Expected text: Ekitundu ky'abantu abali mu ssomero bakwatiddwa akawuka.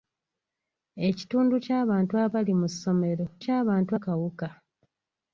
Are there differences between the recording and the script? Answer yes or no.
yes